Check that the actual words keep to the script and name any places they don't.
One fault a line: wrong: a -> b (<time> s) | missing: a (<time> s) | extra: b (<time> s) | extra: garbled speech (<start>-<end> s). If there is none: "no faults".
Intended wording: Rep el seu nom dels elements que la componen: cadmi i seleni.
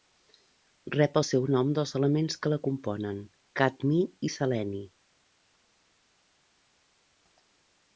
no faults